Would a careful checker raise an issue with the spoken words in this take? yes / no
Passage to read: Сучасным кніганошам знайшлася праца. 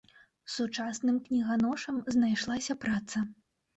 no